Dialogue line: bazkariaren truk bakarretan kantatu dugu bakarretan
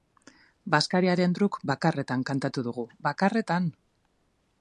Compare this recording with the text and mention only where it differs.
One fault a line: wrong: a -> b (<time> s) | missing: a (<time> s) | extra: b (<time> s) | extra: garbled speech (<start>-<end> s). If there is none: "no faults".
no faults